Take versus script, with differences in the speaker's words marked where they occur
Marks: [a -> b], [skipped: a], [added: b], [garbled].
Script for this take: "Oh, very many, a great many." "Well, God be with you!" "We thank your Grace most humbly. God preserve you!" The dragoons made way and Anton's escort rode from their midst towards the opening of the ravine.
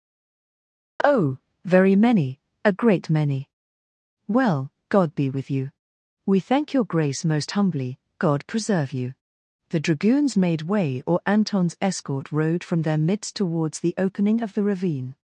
"Oh, very many, a great many." "Well, God be with you!" "We thank your Grace most humbly. God preserve you!" The dragoons made way [and -> or] Anton's escort rode from their midst towards the opening of the ravine.